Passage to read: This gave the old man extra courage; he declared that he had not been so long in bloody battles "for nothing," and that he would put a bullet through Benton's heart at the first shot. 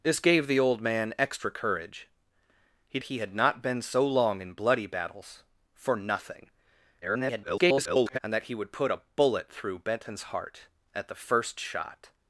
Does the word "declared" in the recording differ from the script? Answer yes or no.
yes